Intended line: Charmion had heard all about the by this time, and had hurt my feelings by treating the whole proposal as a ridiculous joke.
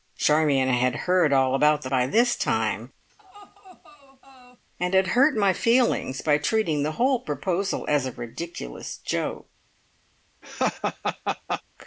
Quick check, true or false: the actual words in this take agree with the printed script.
true